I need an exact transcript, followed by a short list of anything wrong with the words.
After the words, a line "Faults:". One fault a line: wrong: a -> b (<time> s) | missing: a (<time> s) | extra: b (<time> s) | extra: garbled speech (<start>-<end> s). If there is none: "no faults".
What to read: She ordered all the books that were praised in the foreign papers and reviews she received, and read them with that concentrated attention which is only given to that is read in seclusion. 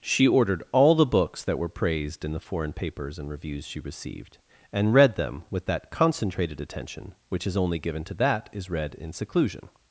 She ordered all the books that were praised in the foreign papers and reviews she received, and read them with that concentrated attention which is only given to that is read in seclusion.
Faults:
no faults